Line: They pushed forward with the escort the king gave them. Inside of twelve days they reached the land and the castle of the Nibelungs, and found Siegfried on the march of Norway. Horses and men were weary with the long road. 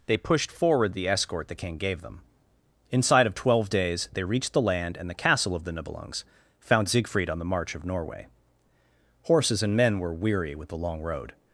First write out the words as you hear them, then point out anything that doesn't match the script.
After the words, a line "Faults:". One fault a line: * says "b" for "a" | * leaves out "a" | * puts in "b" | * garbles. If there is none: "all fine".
They pushed forward the escort the king gave them. Inside of twelve days they reached the land and the castle of the Nibelungs, found Siegfried on the march of Norway. Horses and men were weary with the long road.
Faults:
* leaves out "with"
* leaves out "and"